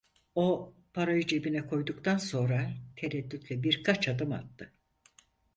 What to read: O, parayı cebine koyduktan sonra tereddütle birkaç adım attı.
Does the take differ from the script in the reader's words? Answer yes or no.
no